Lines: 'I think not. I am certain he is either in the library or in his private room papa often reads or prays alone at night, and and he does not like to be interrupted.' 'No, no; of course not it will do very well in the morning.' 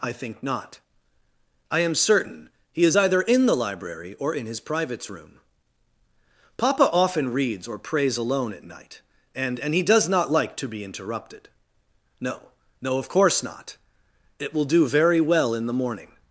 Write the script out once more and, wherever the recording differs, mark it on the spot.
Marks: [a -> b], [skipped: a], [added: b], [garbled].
'I think not. I am certain he is either in the library or in his [private -> privates] room papa often reads or prays alone at night, and and he does not like to be interrupted.' 'No, no; of course not it will do very well in the morning.'